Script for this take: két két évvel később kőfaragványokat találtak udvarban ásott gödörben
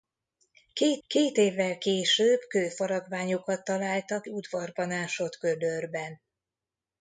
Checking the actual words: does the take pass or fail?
pass